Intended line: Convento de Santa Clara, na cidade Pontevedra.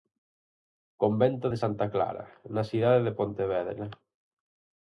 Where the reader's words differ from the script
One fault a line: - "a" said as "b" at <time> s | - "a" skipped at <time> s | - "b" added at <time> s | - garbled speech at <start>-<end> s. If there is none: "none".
- "de" added at 3.1 s